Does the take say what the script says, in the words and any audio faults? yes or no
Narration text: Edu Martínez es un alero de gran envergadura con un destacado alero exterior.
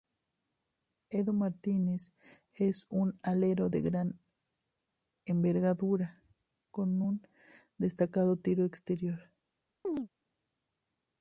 no